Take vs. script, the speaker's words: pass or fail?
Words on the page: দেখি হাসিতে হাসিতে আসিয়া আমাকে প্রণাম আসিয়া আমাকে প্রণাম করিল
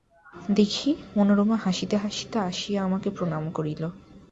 fail